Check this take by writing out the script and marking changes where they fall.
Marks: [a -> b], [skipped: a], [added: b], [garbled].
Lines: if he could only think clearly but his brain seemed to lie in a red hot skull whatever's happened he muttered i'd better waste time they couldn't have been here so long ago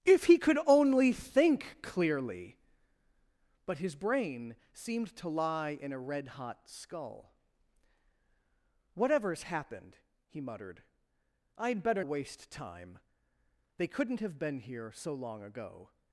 if he could only think clearly but his brain seemed to lie in a red hot skull whatever's happened he muttered i'd better waste time they couldn't have been here so long ago